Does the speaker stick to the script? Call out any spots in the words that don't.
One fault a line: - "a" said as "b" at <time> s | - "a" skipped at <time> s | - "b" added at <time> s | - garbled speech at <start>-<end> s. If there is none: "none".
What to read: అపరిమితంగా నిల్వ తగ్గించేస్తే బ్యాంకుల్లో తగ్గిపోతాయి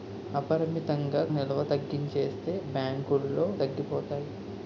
none